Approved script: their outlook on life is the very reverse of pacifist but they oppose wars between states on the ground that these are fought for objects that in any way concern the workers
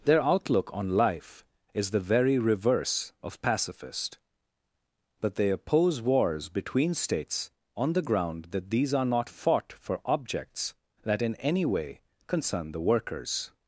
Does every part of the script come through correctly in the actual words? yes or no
no